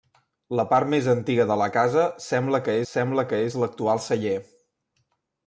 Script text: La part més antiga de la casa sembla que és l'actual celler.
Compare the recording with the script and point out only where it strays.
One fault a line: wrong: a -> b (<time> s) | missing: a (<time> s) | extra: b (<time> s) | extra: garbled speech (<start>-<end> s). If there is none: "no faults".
extra: sembla que (2.9 s)